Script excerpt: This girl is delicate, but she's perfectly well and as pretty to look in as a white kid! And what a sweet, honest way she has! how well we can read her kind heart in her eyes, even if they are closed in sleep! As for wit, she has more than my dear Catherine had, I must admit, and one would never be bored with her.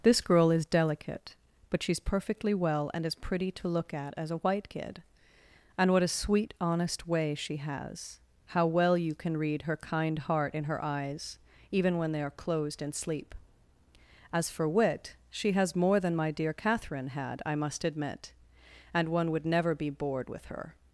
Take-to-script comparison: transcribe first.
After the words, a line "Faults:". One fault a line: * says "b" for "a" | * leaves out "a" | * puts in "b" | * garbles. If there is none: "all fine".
This girl is delicate, but she's perfectly well and as pretty to look at as a white kid! And what a sweet, honest way she has! how well you can read her kind heart in her eyes, even when they are closed in sleep! As for wit, she has more than my dear Catherine had, I must admit, and one would never be bored with her.
Faults:
* says "at" for "in"
* says "you" for "we"
* says "when" for "if"